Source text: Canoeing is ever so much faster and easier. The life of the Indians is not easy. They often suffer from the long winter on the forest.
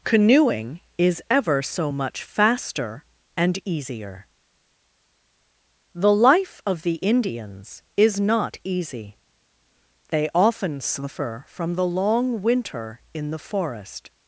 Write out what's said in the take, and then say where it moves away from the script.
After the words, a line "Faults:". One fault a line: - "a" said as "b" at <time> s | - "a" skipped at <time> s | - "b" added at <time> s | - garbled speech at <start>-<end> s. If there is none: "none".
Canoeing is ever so much faster and easier. The life of the Indians is not easy. They often suffer from the long winter in the forest.
Faults:
- "on" said as "in" at 13.1 s